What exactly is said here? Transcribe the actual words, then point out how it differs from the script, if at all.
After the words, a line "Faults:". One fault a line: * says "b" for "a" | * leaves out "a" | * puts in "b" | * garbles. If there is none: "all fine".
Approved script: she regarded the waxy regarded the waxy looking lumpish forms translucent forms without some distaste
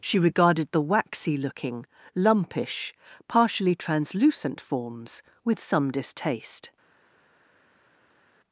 she regarded the waxy looking lumpish partially translucent forms with some distaste
Faults:
* leaves out "regarded the waxy"
* says "partially" for "forms"
* says "with" for "without"